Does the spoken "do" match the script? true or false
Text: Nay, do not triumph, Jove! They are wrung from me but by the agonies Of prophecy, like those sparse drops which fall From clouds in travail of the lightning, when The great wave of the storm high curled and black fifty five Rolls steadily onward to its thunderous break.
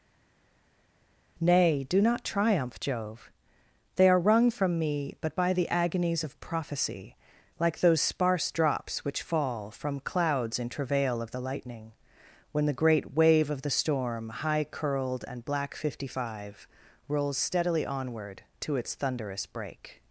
true